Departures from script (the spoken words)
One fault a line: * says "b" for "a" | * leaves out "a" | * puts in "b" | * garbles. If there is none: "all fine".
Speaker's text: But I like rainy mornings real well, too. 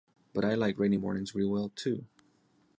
all fine